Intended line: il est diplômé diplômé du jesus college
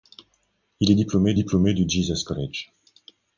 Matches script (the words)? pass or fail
pass